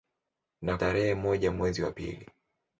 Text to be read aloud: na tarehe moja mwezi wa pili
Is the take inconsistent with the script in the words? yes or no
no